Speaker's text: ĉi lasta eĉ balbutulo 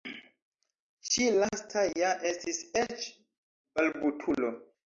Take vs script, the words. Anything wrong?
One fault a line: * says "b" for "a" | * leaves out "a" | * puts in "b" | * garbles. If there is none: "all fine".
* puts in "ja estis"